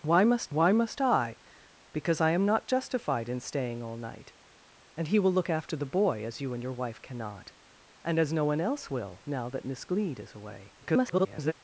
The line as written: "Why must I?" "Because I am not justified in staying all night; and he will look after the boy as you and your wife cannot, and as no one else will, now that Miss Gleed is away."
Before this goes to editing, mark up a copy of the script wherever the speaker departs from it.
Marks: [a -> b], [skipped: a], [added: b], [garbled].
"Why must [added: why must] I?" "Because I am not justified in staying all night; and he will look after the boy as you and your wife cannot, and as no one else will, now that Miss Gleed is away." [garbled]